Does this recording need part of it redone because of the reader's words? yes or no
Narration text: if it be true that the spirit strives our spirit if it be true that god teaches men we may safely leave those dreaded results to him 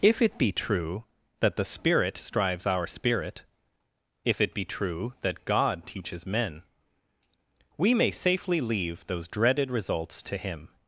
no